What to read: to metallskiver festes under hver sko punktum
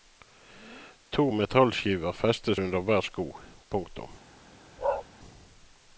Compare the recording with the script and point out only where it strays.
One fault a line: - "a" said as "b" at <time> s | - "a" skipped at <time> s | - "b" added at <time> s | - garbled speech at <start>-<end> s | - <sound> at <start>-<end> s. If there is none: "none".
- bark at 4.8-5.1 s